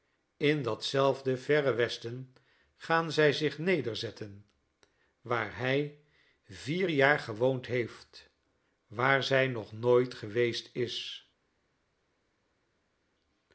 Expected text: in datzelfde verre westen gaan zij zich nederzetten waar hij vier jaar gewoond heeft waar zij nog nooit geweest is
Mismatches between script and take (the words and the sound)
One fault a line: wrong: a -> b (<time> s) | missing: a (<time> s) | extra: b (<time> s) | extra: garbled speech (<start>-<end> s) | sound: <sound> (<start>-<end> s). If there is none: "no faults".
no faults